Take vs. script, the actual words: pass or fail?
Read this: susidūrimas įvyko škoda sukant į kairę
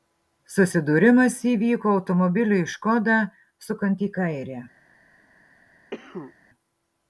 fail